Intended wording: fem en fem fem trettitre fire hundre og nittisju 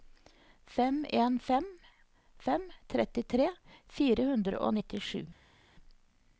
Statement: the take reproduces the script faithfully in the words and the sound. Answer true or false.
true